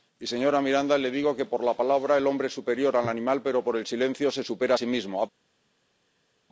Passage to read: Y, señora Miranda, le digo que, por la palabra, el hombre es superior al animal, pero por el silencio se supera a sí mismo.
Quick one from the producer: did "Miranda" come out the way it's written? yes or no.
yes